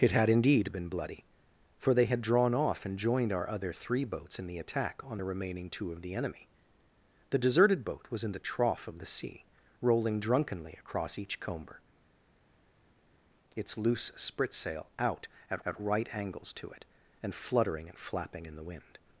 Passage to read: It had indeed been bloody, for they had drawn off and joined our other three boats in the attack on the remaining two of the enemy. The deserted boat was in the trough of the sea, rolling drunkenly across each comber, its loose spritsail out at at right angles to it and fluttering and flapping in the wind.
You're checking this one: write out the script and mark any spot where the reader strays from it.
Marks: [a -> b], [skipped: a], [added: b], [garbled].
It had indeed been bloody, for they had drawn off and joined our other three boats in the attack on the remaining two of the enemy. The deserted boat was in the trough of the sea, rolling drunkenly across each comber, its loose spritsail out at at right angles to it and fluttering and flapping in the wind.